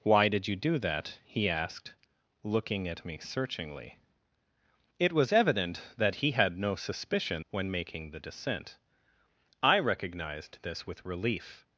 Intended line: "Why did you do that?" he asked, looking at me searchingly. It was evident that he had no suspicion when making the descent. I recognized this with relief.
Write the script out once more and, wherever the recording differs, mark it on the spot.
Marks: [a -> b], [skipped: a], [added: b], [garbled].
"Why did you do that?" he asked, looking at me searchingly. It was evident that he had no suspicion when making the descent. I recognized this with relief.